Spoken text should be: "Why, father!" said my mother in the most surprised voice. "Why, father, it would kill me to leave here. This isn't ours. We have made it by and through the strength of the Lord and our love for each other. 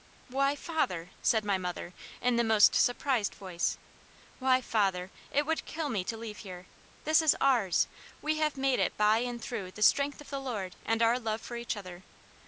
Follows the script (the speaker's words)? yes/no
no